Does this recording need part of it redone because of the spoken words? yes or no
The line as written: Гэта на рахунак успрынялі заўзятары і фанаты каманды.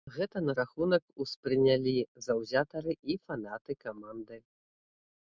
no